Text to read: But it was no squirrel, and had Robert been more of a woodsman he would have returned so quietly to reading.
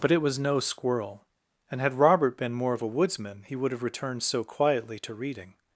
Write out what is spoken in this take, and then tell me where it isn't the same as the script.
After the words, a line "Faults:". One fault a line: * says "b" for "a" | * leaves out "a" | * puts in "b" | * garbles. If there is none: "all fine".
But it was no squirrel, and had Robert been more of a woodsman he would have returned so quietly to reading.
Faults:
all fine